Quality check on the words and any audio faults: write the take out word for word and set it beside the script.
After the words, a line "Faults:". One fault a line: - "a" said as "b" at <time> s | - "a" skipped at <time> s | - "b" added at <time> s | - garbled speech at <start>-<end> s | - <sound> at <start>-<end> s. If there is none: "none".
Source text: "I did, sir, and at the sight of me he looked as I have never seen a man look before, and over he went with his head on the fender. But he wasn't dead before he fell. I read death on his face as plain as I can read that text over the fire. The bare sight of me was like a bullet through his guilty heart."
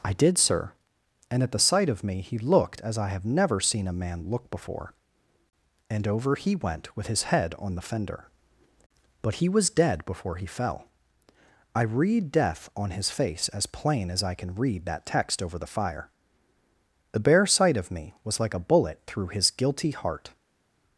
"I did, sir, and at the sight of me he looked as I have never seen a man look before, and over he went with his head on the fender. But he was dead before he fell. I read death on his face as plain as I can read that text over the fire. The bare sight of me was like a bullet through his guilty heart."
Faults:
- "wasn't" said as "was" at 9.5 s